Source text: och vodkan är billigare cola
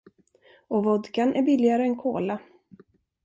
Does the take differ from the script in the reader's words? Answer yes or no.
yes